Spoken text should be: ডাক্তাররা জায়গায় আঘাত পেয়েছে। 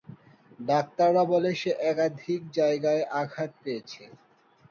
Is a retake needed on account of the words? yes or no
yes